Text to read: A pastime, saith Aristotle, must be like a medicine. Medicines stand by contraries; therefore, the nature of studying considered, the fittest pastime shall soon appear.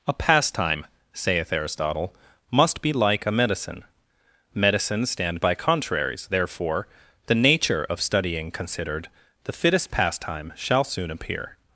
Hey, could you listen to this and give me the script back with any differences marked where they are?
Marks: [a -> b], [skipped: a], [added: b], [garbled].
A pastime, saith Aristotle, must be like a medicine. Medicines stand by contraries; therefore, the nature of studying considered, the fittest pastime shall soon appear.